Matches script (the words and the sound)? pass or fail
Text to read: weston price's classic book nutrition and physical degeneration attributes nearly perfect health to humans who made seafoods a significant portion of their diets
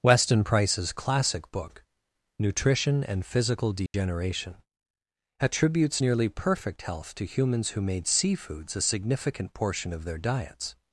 fail